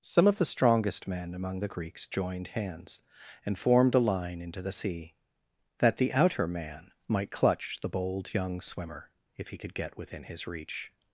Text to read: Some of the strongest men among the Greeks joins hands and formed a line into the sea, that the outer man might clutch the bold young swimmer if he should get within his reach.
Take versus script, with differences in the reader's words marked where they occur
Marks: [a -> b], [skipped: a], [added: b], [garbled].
Some of the strongest men among the Greeks [joins -> joined] hands and formed a line into the sea, that the outer man might clutch the bold young swimmer if he [should -> could] get within his reach.